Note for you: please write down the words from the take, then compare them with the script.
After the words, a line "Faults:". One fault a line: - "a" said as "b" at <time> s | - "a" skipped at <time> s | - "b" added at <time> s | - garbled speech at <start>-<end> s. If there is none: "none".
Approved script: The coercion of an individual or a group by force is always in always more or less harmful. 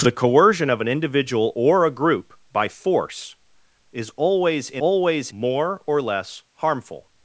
The coercion of an individual or a group by force is always in always more or less harmful.
Faults:
none